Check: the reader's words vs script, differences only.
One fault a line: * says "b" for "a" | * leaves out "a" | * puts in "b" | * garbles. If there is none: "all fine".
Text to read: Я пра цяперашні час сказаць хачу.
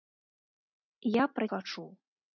* leaves out "цяперашні час сказаць"